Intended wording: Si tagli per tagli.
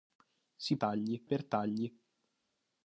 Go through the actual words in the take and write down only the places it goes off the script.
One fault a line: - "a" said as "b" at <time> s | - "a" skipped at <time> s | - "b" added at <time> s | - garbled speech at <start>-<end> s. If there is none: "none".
none